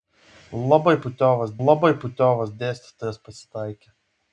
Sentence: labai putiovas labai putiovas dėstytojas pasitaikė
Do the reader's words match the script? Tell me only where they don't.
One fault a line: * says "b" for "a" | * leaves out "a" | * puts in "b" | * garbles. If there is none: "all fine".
all fine